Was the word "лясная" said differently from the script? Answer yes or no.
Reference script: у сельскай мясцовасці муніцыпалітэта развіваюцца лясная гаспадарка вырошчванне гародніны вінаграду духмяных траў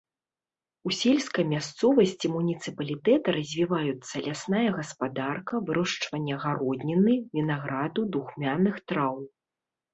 no